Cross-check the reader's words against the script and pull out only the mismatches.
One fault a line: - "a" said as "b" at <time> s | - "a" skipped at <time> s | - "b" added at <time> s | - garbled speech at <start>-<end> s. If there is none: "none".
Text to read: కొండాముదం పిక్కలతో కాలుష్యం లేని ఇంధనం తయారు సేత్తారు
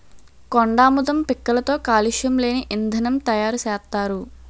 none